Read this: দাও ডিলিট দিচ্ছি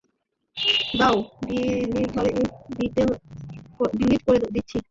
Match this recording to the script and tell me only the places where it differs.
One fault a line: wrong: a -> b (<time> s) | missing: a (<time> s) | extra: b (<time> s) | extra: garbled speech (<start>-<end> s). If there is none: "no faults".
extra: করে (4.3 s)